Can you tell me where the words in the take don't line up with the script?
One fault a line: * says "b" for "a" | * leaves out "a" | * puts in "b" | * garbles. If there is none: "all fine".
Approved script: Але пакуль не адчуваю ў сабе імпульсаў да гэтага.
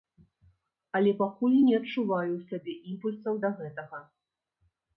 all fine